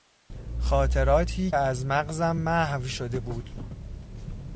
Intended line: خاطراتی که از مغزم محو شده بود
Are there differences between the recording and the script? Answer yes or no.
yes